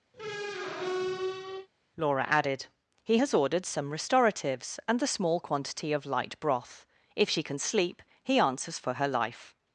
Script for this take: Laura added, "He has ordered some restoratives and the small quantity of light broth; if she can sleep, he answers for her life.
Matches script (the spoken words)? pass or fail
pass